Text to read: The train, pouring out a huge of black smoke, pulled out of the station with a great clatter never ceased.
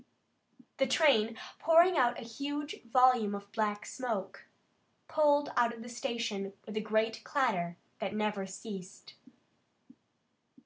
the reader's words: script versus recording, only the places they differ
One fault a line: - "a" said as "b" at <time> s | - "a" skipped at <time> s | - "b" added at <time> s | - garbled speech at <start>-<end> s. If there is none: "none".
- "volume" added at 2.9 s
- "that" added at 8.0 s